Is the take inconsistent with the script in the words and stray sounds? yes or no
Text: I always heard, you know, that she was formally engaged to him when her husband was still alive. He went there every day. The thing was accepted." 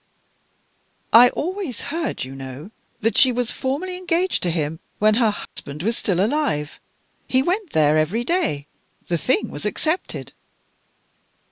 yes